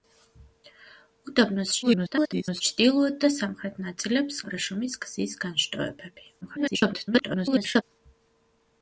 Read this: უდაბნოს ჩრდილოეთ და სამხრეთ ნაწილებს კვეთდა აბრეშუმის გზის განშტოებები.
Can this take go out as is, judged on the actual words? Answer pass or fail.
fail